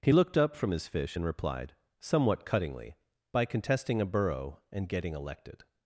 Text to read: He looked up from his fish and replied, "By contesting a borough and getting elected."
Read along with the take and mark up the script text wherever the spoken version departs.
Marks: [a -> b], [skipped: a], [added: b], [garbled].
He looked up from his fish and replied, [added: somewhat cuttingly] "By contesting a borough and getting elected."